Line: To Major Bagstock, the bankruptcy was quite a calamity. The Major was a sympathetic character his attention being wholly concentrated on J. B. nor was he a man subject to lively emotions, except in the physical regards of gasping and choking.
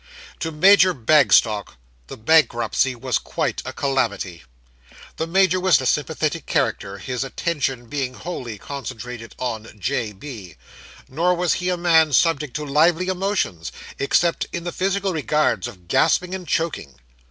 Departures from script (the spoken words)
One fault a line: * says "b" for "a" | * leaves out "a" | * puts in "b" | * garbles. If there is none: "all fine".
all fine